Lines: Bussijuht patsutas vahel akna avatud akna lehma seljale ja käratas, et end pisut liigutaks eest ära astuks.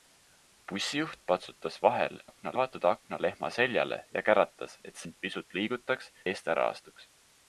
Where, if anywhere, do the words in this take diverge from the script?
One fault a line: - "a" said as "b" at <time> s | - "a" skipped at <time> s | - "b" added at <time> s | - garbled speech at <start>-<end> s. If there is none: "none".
none